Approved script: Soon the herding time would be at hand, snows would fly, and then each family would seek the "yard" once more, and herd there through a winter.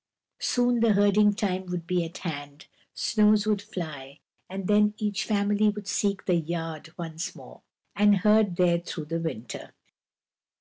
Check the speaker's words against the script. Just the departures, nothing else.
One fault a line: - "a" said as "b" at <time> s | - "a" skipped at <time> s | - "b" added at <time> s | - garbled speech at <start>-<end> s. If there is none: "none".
- "a" said as "the" at 9.1 s